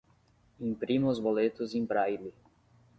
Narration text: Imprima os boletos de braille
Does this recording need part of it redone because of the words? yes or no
yes